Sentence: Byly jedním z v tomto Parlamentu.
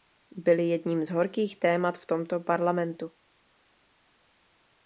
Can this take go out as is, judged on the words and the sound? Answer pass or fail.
fail